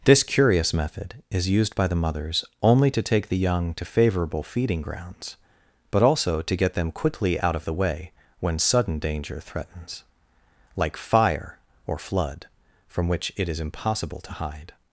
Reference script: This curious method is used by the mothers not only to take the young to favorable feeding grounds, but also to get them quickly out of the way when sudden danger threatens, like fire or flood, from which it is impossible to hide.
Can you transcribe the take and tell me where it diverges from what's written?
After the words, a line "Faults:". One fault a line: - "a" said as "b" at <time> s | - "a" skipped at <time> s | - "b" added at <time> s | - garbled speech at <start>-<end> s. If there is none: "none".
This curious method is used by the mothers only to take the young to favorable feeding grounds, but also to get them quickly out of the way when sudden danger threatens, like fire or flood, from which it is impossible to hide.
Faults:
- "not" skipped at 2.4 s